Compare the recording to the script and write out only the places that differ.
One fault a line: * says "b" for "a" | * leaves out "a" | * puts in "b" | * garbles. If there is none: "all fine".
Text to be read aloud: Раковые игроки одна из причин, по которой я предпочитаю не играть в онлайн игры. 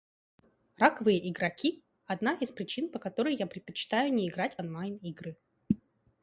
all fine